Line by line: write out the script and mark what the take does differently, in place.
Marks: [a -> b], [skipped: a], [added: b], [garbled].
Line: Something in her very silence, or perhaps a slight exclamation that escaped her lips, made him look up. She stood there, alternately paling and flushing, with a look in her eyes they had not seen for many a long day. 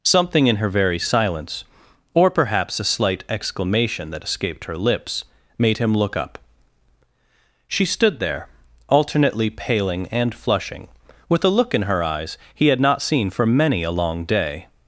Something in her very silence, or perhaps a slight exclamation that escaped her lips, made him look up. She stood there, alternately paling and flushing, with a look in her eyes [they -> he] had not seen for many a long day.